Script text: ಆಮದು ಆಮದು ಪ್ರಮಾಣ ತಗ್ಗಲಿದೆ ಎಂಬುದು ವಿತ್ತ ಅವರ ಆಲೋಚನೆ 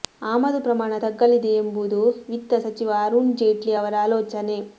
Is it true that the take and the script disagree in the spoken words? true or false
true